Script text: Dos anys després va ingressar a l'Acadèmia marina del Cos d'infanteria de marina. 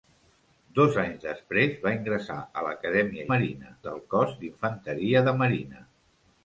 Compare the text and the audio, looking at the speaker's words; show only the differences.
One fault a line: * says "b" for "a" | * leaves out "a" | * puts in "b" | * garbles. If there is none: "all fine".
all fine